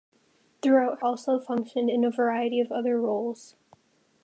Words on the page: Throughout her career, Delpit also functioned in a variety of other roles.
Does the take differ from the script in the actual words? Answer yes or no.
yes